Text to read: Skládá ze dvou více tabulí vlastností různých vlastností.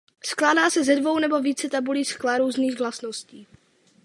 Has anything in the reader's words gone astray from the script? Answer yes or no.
yes